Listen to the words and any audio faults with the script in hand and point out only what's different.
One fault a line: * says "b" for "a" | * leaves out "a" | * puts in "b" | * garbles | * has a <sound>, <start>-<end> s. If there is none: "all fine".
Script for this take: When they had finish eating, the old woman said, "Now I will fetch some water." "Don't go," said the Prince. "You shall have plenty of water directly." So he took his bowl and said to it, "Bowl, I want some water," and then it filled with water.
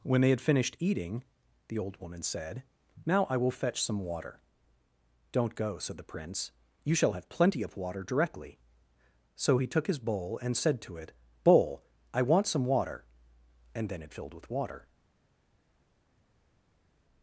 * says "finished" for "finish"